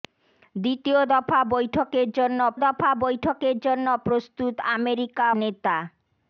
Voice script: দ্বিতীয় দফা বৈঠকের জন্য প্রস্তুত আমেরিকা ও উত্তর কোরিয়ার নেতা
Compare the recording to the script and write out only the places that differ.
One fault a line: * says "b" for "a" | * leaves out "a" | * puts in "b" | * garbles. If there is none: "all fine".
* says "দফা বৈঠকের জন্য প্রস্তুত আমেরিকা" for "প্রস্তুত আমেরিকা ও উত্তর কোরিয়ার"